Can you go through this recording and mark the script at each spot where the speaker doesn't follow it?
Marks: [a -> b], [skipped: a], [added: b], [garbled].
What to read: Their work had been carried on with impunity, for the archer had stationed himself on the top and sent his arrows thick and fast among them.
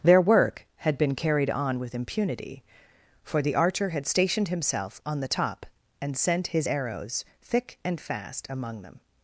Their work had been carried on with impunity, for the archer had stationed himself on the top and sent his arrows thick and fast among them.